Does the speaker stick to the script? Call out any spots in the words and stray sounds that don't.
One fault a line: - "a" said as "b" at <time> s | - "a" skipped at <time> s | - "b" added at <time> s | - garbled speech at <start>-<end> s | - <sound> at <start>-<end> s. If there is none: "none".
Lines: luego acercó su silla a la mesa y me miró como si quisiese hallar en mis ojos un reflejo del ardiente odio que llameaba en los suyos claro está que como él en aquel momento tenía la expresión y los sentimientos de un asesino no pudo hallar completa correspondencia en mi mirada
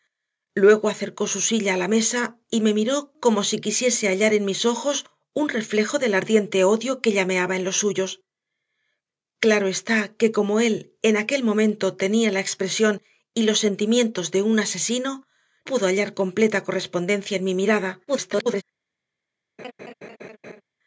- "no" skipped at 15.3 s
- garbled speech at 18.1-18.6 s
- laugh at 19.6-20.6 s